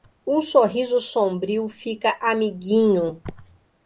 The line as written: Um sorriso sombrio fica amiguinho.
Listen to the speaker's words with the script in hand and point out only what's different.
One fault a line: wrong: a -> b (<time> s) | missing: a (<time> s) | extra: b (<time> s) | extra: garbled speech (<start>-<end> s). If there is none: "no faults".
no faults